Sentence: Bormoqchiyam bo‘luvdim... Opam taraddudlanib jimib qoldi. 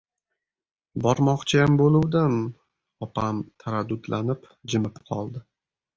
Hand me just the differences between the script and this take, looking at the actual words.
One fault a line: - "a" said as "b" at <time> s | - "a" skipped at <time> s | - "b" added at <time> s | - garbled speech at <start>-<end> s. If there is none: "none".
none